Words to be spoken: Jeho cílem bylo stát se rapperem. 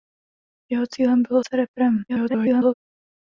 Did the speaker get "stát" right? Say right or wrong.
wrong